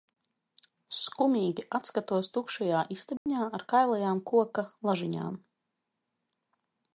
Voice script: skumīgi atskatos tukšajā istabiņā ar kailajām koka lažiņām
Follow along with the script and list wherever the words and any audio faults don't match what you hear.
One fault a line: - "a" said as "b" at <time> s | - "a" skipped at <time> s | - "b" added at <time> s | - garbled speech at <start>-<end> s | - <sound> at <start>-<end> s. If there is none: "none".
- dropout at 3.2-3.3 s